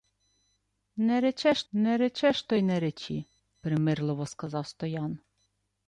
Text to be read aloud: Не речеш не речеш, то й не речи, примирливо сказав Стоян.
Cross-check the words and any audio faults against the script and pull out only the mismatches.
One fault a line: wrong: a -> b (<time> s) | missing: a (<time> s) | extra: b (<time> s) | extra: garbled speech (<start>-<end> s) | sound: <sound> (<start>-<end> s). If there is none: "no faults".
no faults